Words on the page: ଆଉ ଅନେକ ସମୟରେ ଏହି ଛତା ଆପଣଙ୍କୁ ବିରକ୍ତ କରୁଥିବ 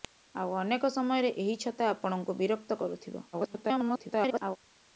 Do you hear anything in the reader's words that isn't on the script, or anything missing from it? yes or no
yes